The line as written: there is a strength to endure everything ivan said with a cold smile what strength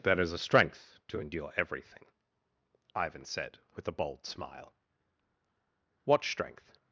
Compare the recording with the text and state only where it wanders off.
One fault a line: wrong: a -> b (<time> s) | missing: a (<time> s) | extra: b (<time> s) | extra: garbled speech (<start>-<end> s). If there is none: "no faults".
wrong: cold -> bold (3.9 s)